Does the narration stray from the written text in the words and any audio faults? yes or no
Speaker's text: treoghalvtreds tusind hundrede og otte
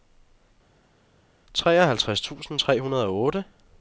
yes